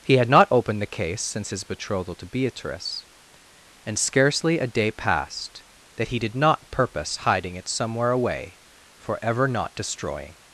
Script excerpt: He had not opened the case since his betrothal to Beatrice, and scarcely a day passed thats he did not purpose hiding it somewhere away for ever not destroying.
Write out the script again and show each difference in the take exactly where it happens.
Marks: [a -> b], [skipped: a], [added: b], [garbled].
He had not opened the case since his betrothal to Beatrice, and scarcely a day passed [thats -> that] he did not purpose hiding it somewhere away for ever not destroying.